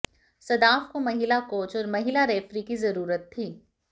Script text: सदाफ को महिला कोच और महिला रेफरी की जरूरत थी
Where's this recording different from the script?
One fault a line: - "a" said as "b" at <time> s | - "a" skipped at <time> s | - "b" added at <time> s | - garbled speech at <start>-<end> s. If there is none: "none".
none